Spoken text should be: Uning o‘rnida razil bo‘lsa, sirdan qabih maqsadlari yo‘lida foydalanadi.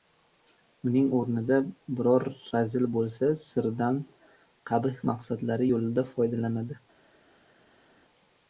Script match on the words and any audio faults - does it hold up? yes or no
no